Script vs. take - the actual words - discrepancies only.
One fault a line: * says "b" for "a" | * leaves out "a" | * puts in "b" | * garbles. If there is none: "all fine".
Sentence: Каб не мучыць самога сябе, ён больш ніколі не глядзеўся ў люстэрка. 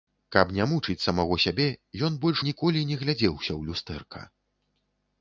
all fine